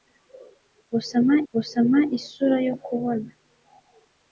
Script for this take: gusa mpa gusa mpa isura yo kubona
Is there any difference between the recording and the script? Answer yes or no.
no